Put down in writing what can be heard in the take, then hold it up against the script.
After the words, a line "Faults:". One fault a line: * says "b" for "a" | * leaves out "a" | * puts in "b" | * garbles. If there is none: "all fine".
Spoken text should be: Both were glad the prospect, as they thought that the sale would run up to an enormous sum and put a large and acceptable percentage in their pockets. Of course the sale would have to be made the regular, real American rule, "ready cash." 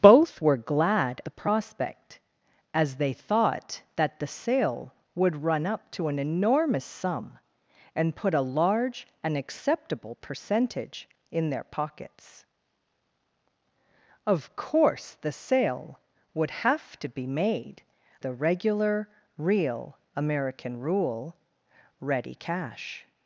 Both were glad the prospect, as they thought that the sale would run up to an enormous sum and put a large and acceptable percentage in their pockets. Of course the sale would have to be made the regular, real American rule, "ready cash."
Faults:
all fine